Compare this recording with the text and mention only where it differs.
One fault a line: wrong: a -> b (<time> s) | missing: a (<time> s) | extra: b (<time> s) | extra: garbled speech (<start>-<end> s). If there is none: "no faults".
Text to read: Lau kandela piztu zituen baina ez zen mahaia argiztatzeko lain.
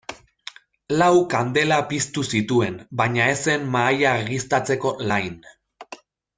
no faults